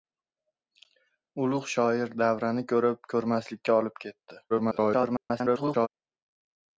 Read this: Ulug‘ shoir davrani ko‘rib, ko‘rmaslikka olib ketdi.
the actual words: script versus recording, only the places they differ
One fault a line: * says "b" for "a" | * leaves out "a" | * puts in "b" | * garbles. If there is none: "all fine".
* garbles